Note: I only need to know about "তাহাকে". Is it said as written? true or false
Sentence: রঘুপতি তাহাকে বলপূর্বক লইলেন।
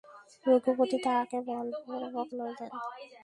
true